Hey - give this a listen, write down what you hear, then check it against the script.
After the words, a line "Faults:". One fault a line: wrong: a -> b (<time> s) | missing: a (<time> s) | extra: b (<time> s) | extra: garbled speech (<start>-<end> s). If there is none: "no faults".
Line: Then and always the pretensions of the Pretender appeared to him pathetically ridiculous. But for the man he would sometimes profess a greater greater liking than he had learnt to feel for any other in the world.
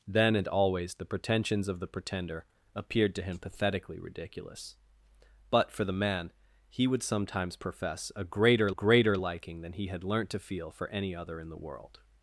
Then and always the pretensions of the Pretender appeared to him pathetically ridiculous. But for the man he would sometimes profess a greater greater liking than he had learnt to feel for any other in the world.
Faults:
no faults